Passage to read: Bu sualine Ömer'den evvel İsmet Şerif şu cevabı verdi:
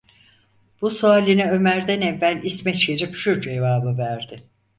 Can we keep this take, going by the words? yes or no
yes